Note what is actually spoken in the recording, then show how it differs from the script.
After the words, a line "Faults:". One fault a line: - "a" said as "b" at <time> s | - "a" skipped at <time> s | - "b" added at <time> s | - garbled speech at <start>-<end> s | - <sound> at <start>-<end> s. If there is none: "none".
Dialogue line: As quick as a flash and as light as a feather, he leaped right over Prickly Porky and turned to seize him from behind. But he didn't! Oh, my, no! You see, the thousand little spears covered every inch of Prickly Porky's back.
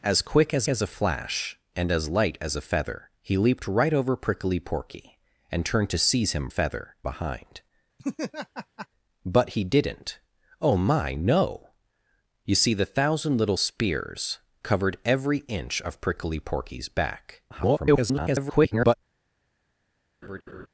As quick as as a flash and as light as a feather, he leaped right over Prickly Porky and turned to seize him feather behind. But he didn't! Oh, my, no! You see, the thousand little spears covered every inch of Prickly Porky's back. [garbled]
Faults:
- "as" added at 0.7 s
- "from" said as "feather" at 6.5 s
- laugh at 8.0-8.9 s
- garbled speech at 17.5-18.9 s
- laugh at 20.2-20.7 s